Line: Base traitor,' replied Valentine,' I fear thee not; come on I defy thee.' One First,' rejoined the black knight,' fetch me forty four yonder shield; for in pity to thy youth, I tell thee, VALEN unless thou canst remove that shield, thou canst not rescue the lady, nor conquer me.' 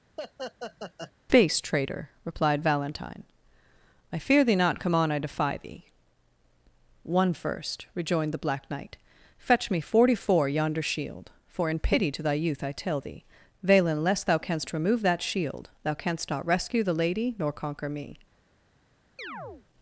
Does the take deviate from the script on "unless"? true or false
true